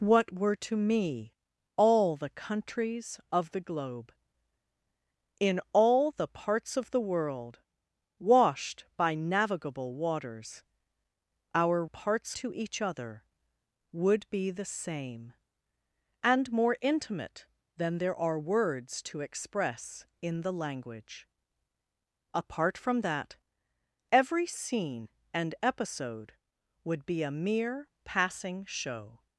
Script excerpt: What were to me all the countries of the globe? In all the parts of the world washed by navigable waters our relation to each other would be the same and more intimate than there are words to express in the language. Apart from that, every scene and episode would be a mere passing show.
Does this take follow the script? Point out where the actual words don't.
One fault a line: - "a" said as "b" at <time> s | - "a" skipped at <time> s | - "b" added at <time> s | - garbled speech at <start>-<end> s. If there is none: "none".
- "relation" said as "parts" at 11.9 s